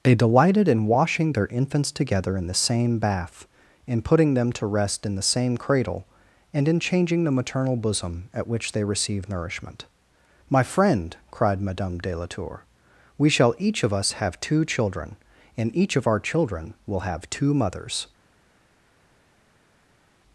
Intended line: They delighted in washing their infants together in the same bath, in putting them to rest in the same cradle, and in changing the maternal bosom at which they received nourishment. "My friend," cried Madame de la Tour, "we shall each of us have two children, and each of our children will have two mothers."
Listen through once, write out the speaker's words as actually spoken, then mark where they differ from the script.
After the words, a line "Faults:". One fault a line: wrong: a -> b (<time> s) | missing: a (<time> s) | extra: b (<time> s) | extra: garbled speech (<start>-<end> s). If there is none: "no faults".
They delighted in washing their infants together in the same bath, in putting them to rest in the same cradle, and in changing the maternal bosom at which they receive nourishment. "My friend," cried Madame de la Tour, "we shall each of us have two children, and each of our children will have two mothers."
Faults:
wrong: received -> receive (8.8 s)